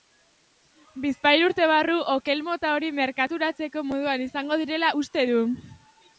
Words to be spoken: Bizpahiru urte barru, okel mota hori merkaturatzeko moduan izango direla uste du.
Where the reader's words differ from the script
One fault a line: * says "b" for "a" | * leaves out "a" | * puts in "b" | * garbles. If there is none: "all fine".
all fine